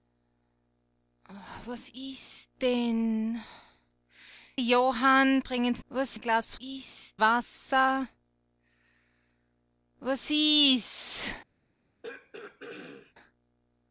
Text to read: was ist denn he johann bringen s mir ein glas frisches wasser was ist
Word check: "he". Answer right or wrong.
wrong